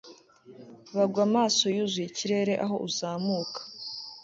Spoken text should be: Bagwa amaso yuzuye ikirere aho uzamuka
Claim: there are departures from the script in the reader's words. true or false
false